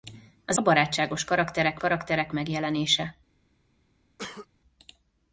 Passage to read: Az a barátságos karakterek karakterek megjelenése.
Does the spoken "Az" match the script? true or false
true